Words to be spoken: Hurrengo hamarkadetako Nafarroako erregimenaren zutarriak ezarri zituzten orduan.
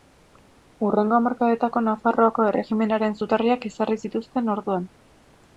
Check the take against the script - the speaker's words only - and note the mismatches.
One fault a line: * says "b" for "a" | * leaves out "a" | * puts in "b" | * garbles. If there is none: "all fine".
all fine